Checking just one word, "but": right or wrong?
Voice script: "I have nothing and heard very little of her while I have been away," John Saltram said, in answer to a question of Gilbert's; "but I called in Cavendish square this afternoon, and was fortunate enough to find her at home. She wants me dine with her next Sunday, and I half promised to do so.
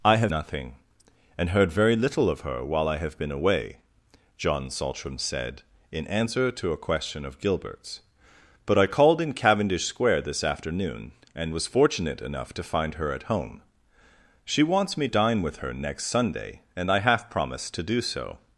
right